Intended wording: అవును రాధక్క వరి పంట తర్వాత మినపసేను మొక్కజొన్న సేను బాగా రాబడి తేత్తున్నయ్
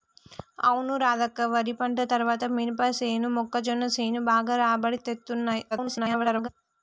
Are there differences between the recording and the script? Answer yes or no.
yes